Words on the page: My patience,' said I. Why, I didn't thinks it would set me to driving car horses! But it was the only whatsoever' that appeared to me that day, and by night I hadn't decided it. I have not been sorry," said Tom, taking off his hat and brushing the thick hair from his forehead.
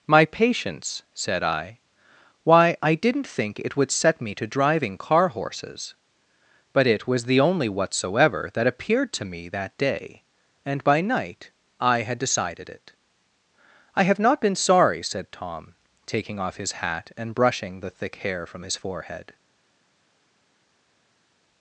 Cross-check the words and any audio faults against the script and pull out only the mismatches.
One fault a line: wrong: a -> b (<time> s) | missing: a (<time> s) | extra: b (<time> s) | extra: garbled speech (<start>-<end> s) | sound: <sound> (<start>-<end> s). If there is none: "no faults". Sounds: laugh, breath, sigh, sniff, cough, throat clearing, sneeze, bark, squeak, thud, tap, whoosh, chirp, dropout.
wrong: thinks -> think (3.3 s)
wrong: hadn't -> had (12.0 s)